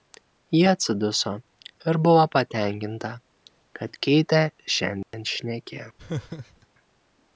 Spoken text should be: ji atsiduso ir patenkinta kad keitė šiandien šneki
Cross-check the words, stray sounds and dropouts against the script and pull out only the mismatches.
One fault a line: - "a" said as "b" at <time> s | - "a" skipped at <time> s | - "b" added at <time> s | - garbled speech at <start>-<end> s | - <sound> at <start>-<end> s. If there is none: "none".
- "buvo" added at 2.0 s
- dropout at 5.0-5.1 s
- laugh at 6.0-6.7 s